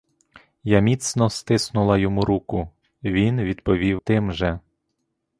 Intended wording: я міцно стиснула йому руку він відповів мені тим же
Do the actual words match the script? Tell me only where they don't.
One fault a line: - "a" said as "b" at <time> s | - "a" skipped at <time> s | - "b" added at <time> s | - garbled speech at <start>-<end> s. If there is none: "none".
- "мені" skipped at 4.0 s